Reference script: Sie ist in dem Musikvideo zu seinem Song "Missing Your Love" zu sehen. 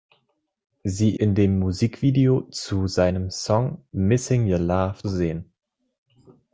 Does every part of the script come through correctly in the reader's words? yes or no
no